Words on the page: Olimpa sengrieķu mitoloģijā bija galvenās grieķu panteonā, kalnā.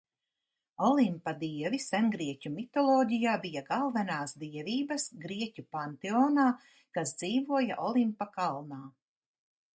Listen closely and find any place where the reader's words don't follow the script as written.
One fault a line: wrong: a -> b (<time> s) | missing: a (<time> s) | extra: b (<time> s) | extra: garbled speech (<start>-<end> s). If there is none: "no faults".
extra: dievi (1.4 s)
extra: dievības (4.5 s)
extra: kas dzīvoja Olimpa (7.0 s)